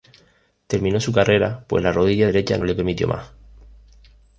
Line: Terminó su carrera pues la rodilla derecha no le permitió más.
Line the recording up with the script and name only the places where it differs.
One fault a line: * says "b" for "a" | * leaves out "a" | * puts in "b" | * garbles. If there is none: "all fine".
all fine